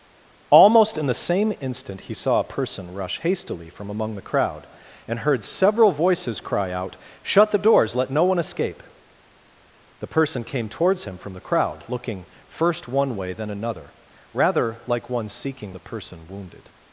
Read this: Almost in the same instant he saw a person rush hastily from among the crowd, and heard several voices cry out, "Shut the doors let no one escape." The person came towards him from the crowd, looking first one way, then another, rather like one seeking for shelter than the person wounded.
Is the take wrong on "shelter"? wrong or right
wrong